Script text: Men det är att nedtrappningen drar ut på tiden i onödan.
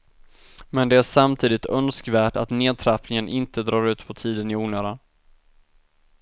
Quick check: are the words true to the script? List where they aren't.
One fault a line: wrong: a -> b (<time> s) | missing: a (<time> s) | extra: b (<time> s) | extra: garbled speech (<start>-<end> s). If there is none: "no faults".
extra: samtidigt önskvärt (1.0 s)
extra: inte (3.3 s)